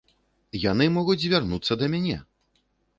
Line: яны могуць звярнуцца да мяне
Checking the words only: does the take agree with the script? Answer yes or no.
yes